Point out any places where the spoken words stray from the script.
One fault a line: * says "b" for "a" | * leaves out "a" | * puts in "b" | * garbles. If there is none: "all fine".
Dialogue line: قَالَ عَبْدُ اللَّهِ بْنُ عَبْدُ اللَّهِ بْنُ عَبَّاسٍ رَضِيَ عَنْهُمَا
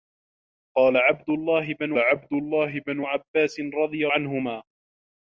all fine